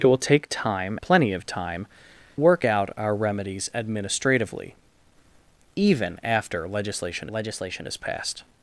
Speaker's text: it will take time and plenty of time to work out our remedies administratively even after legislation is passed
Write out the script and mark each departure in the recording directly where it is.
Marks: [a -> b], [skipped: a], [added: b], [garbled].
it will take time [skipped: and] plenty of time [skipped: to] work out our remedies administratively even after legislation [added: legislation] is passed